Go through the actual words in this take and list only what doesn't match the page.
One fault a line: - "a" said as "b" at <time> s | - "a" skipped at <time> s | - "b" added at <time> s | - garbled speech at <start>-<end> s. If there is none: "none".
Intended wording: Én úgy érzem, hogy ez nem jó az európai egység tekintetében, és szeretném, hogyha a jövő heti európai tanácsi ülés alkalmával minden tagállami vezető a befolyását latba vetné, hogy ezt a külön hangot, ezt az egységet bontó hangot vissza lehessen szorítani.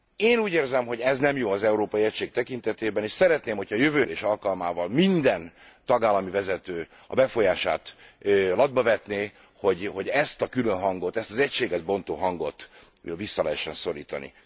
- "heti európai tanácsi" skipped at 4.0 s